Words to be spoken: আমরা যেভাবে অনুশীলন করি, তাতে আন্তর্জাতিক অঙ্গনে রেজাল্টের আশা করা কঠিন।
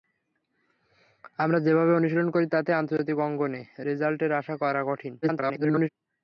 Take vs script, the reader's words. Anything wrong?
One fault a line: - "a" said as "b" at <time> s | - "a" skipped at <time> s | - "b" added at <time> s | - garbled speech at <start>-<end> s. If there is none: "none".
- garbled speech at 5.2-5.9 s